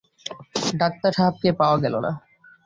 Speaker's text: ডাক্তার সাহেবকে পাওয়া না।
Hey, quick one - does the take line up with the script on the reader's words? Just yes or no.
no